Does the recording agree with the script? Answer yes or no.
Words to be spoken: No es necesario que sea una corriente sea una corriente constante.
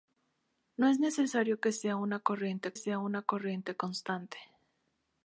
yes